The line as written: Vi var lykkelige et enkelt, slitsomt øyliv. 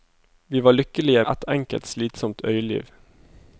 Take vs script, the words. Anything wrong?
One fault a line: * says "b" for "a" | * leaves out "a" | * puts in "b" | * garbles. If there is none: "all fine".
all fine